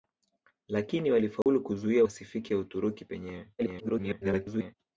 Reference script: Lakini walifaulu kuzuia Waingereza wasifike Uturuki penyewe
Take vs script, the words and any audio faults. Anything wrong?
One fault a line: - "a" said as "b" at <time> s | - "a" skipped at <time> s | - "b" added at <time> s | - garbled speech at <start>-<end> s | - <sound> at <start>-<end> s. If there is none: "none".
- dropout at 1.4-1.5 s
- "Waingereza" skipped at 2.0 s
- garbled speech at 3.6-4.7 s